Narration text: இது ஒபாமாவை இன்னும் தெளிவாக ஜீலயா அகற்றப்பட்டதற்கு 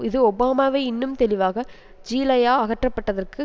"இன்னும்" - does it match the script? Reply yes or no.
yes